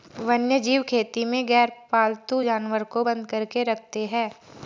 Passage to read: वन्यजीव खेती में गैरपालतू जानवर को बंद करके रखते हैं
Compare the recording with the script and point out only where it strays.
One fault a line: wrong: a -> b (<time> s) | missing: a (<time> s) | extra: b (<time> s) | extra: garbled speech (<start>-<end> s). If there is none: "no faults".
no faults